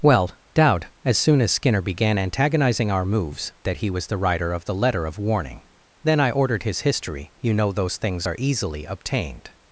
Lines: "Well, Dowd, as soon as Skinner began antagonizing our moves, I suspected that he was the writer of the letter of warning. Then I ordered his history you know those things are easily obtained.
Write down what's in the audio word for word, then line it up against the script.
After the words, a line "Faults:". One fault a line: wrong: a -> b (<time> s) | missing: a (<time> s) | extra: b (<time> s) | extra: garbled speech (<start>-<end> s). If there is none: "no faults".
"Well, Dowd, as soon as Skinner began antagonizing our moves, that he was the writer of the letter of warning. Then I ordered his history you know those things are easily obtained.
Faults:
missing: I suspected (3.5 s)